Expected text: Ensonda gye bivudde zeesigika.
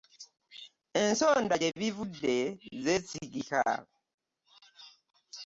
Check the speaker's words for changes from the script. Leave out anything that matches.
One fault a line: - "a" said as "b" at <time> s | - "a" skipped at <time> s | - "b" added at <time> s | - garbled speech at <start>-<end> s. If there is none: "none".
none